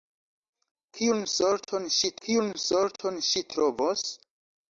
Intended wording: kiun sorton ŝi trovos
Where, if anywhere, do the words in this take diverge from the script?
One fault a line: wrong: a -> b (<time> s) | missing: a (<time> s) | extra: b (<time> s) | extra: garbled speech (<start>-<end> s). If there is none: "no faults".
extra: kiun sorton ŝi (2.3 s)